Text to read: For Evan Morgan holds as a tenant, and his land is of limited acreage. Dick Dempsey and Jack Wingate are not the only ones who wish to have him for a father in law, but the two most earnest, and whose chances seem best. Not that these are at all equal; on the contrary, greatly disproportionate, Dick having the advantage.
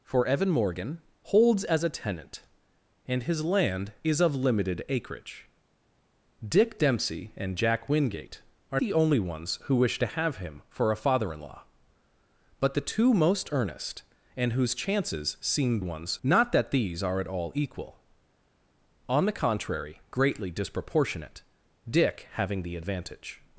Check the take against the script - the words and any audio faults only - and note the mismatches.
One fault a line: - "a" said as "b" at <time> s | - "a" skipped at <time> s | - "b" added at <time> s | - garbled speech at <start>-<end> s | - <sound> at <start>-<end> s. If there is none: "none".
- "not" skipped at 8.8 s
- "best" said as "ones" at 15.8 s